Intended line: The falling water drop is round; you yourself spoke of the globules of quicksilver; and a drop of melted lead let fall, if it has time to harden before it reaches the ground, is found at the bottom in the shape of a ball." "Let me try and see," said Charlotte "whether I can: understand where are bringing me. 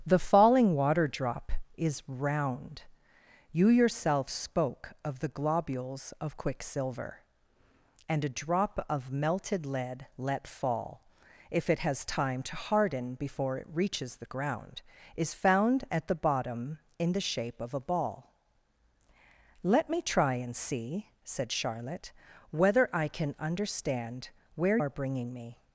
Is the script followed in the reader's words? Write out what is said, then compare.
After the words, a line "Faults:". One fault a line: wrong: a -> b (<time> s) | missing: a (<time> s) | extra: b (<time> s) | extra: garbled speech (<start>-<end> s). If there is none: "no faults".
The falling water drop is round; you yourself spoke of the globules of quicksilver; and a drop of melted lead let fall, if it has time to harden before it reaches the ground, is found at the bottom in the shape of a ball." "Let me try and see," said Charlotte "whether I can: understand where are bringing me.
Faults:
no faults